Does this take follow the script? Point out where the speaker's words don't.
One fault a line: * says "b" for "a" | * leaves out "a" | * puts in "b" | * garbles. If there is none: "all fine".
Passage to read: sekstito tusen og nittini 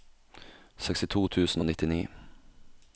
all fine